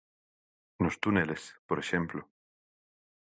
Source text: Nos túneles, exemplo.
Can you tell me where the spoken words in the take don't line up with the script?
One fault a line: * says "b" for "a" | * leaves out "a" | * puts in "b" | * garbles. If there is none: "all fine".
* puts in "por"